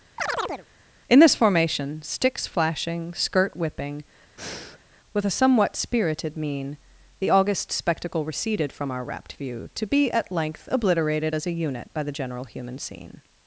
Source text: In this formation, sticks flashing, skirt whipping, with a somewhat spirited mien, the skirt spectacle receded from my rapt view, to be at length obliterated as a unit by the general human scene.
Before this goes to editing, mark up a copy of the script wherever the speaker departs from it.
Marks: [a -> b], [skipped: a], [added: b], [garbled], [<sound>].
[chirp] In this formation, sticks flashing, skirt whipping, [breath] with a somewhat spirited mien, the [skirt -> august] spectacle receded from [my -> our] rapt view, to be at length obliterated as a unit by the general human scene.